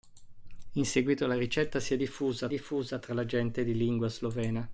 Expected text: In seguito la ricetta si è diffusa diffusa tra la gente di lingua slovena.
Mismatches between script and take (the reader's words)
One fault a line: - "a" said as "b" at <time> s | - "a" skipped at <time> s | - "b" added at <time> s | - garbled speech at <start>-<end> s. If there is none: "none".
none